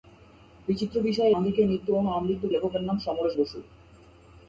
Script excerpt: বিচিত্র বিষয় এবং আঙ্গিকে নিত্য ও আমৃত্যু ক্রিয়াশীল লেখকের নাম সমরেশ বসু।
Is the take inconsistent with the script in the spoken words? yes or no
yes